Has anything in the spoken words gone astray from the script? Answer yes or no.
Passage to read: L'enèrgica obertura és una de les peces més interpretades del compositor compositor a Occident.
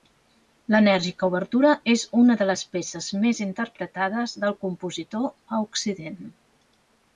yes